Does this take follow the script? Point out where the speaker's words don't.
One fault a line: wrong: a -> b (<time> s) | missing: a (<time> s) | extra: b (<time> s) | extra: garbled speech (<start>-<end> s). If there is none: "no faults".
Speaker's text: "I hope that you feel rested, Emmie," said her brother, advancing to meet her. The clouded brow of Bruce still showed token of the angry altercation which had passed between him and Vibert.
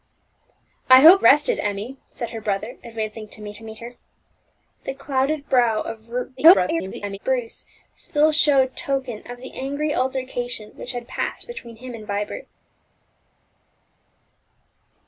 missing: that you feel (1.2 s)
extra: meet (3.6 s)
extra: garbled speech (6.4-7.2 s)